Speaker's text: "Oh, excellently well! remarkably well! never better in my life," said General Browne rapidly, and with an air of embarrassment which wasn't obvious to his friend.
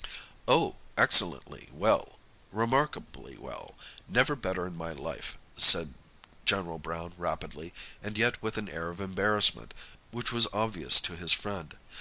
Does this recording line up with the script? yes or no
no